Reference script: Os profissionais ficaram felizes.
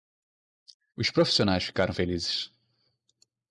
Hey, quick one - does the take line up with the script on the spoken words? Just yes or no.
yes